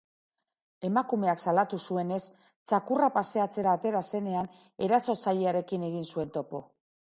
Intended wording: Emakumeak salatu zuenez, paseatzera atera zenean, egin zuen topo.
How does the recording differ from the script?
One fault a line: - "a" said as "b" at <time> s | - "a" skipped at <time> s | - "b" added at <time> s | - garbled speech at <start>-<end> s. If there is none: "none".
- "txakurra" added at 2.7 s
- "erasotzailearekin" added at 4.9 s